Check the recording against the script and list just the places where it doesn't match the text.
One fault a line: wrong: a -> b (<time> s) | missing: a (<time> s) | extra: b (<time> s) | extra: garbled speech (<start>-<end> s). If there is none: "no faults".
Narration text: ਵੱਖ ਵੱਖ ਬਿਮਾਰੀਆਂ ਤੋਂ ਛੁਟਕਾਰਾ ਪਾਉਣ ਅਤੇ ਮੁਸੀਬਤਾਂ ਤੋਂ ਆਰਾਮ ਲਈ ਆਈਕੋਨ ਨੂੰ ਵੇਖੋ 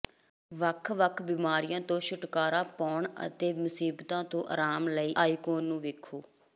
no faults